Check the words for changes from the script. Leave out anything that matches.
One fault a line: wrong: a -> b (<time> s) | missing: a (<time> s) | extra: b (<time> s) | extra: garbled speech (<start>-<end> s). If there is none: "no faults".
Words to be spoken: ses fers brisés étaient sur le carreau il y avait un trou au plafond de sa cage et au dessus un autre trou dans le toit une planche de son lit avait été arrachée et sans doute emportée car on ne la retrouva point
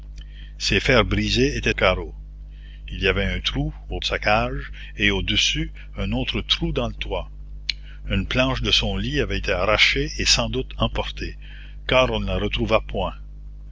missing: sur le (1.8 s)
missing: plafond (4.0 s)